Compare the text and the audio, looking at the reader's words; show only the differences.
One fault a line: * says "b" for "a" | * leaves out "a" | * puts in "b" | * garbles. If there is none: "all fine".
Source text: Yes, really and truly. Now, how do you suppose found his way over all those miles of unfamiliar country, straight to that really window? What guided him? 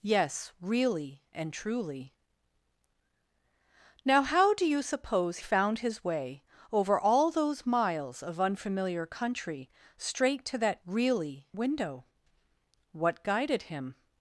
all fine